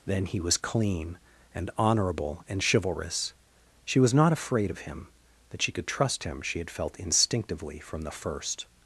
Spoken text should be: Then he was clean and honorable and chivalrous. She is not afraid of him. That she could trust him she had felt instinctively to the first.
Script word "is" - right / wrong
wrong